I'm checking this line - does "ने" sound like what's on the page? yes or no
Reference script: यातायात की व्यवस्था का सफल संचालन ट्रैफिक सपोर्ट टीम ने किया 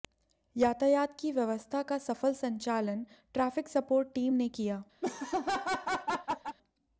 yes